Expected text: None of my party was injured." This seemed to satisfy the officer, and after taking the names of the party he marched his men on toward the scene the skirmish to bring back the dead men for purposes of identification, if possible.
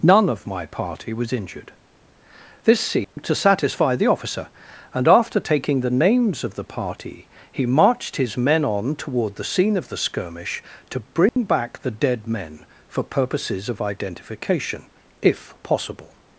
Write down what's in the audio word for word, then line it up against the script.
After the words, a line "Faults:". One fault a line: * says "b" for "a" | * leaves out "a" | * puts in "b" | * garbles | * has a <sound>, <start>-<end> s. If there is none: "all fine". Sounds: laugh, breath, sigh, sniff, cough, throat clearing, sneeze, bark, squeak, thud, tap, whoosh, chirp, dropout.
None of my party was injured." This seemed to satisfy the officer, and after taking the names of the party he marched his men on toward the scene of the skirmish to bring back the dead men for purposes of identification, if possible.
Faults:
* has a dropout, 3.0-3.2 s
* puts in "of"
* has a dropout, 11.3-11.4 s